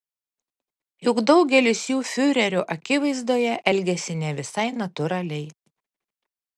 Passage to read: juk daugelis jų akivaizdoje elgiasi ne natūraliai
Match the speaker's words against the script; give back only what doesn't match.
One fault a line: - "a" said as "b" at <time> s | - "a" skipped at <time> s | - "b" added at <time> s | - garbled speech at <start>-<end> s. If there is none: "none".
- "fiurerio" added at 2.1 s
- "visai" added at 4.4 s